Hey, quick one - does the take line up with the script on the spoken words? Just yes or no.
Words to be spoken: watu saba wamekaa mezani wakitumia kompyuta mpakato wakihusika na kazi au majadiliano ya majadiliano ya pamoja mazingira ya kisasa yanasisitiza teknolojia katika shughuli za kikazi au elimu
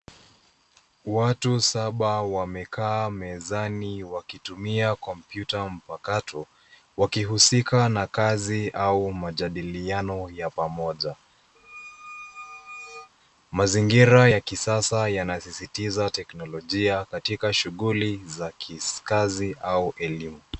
no